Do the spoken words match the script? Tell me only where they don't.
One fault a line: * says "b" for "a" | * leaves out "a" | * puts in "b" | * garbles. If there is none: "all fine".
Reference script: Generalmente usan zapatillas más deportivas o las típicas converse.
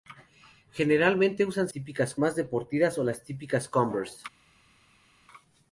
* says "típicas" for "zapatillas"